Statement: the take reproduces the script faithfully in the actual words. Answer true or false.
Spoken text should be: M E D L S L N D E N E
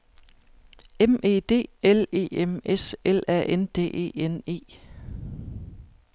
false